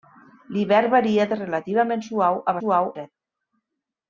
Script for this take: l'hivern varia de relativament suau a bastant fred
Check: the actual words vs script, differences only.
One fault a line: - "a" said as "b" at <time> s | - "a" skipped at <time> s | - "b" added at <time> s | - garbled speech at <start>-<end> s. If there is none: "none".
- "bastant" said as "suau" at 2.6 s